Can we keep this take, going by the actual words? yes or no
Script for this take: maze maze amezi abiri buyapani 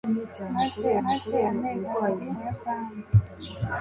yes